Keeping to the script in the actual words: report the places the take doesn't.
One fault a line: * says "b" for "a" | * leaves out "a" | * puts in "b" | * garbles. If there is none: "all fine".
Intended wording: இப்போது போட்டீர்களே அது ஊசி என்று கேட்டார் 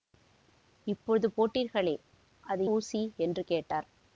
all fine